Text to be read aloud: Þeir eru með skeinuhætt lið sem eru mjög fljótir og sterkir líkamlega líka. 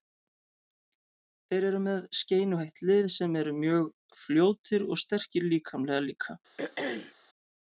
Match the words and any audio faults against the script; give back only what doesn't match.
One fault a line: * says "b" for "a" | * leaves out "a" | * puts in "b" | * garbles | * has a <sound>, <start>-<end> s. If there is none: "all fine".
* has a throat clearing, 6.6-7.1 s